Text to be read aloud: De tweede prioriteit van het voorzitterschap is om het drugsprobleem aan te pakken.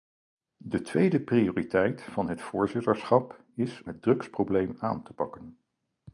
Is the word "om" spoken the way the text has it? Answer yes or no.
no